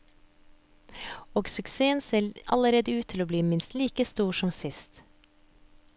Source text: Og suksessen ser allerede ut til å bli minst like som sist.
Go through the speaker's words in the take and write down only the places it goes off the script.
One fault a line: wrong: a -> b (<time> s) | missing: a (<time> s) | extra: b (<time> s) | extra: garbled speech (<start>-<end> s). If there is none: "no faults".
extra: stor (4.0 s)